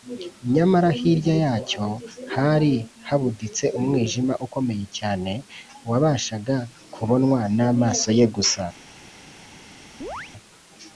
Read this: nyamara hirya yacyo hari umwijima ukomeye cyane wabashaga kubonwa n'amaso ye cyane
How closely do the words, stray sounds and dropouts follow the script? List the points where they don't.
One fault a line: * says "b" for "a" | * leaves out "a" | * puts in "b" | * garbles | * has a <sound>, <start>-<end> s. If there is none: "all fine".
* puts in "habuditse"
* says "gusa" for "cyane"
* has a chirp, 10.0-10.3 s